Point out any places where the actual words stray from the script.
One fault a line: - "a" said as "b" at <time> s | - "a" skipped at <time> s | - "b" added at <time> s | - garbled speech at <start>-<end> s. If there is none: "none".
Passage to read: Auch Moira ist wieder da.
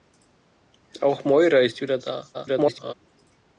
- garbled speech at 2.3-2.9 s